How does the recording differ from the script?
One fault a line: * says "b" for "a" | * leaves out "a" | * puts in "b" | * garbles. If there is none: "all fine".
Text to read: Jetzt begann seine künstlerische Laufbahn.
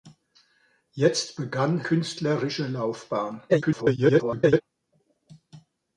* leaves out "seine"
* garbles